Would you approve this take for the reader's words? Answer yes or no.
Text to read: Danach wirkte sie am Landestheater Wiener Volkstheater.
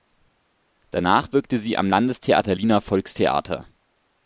yes